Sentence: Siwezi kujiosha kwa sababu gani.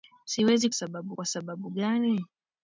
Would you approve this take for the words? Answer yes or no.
no